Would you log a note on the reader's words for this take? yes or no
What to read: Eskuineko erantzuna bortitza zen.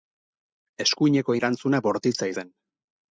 no